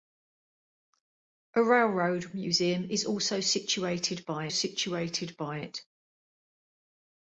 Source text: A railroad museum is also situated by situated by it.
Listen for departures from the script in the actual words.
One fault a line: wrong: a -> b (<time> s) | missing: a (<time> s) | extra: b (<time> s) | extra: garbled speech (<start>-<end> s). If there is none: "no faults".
no faults